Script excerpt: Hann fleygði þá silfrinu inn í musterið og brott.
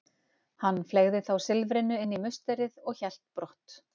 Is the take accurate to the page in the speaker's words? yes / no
no